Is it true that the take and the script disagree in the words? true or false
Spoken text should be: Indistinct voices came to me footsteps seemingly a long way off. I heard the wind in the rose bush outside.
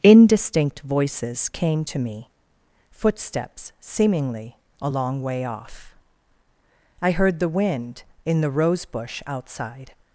false